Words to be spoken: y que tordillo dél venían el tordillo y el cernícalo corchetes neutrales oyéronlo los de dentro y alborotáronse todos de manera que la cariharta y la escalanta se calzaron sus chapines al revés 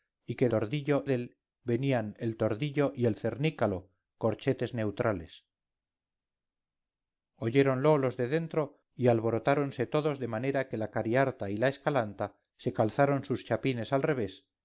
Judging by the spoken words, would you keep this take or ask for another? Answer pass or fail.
pass